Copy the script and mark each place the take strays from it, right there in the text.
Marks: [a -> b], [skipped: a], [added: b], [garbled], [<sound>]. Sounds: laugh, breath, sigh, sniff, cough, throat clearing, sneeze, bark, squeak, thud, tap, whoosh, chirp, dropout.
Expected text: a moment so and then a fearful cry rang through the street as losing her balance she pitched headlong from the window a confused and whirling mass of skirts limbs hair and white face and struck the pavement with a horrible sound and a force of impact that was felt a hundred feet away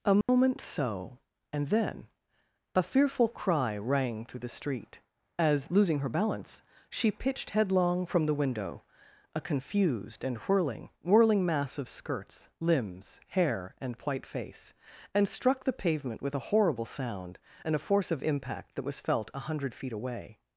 a moment [dropout] so and then a fearful cry rang through the street as losing her balance she pitched headlong from the window a confused and whirling [added: whirling] mass of skirts limbs hair and white face and struck the pavement with a horrible sound and a force of impact that was felt a hundred feet away